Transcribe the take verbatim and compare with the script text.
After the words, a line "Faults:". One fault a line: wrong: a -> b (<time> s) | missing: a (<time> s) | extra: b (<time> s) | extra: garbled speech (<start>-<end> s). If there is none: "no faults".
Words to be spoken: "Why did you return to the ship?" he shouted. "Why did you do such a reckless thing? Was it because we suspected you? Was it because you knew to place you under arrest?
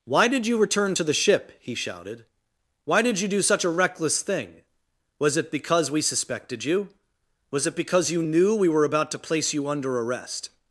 "Why did you return to the ship?" he shouted. "Why did you do such a reckless thing? Was it because we suspected you? Was it because you knew we were about to place you under arrest?
Faults:
extra: we were about (8.5 s)